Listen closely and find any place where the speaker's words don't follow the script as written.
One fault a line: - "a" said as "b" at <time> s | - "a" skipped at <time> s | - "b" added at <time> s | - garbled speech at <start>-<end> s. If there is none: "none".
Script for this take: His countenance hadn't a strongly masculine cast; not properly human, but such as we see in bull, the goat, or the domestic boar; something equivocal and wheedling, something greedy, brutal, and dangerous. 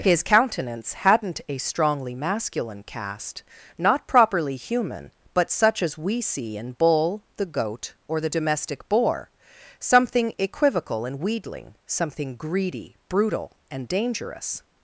none